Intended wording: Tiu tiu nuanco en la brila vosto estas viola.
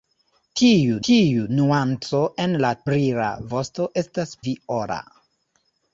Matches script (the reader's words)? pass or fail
pass